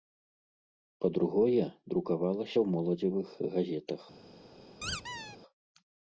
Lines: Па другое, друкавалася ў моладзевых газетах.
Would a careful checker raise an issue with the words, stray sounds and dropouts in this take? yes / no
yes